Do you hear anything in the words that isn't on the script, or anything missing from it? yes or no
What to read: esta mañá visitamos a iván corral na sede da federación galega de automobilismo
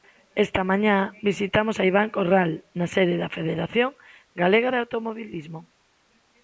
no